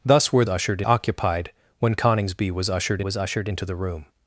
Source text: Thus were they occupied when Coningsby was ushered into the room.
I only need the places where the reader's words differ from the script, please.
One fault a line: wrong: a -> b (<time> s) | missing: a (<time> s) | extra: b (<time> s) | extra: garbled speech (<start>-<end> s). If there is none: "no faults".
wrong: they -> ushered (0.5 s)
extra: was ushered (3.0 s)